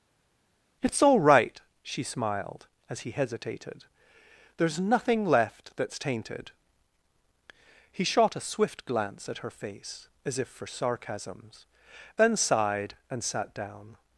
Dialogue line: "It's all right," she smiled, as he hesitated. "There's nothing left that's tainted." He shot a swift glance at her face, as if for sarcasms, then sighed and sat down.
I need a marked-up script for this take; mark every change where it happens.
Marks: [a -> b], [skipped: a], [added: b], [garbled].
"It's all right," she smiled, as he hesitated. "There's nothing left that's tainted." He shot a swift glance at her face, as if for sarcasms, then sighed and sat down.